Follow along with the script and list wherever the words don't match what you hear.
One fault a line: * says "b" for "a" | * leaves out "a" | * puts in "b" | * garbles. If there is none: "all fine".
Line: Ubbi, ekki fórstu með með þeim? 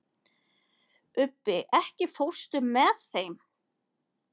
* leaves out "með"